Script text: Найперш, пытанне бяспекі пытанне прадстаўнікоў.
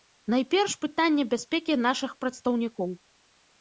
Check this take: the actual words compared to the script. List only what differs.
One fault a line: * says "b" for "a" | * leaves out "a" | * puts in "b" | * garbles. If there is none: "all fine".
* says "нашых" for "пытанне"